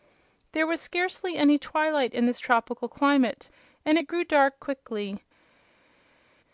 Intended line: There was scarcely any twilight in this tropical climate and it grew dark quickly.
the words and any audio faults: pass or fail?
pass